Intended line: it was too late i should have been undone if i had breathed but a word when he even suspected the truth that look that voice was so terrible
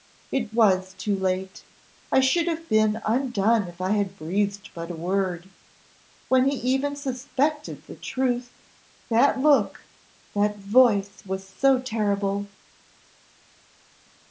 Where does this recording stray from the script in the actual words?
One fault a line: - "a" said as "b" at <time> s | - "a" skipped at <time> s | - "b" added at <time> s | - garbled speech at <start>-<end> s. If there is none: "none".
none